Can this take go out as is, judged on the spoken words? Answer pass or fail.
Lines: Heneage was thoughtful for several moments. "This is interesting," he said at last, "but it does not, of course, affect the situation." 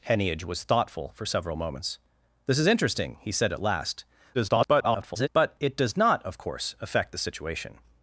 fail